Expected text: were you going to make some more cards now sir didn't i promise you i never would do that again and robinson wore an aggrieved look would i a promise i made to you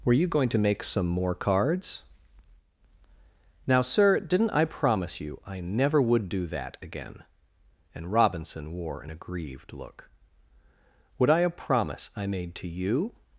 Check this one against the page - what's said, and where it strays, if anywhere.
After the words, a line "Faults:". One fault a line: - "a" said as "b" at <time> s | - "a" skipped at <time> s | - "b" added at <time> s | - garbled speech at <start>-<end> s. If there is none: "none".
were you going to make some more cards now sir didn't i promise you i never would do that again and robinson wore an aggrieved look would i a promise i made to you
Faults:
none